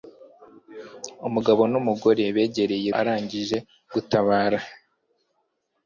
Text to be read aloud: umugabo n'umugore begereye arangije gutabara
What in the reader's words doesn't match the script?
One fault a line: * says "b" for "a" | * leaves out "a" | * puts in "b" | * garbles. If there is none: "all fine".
all fine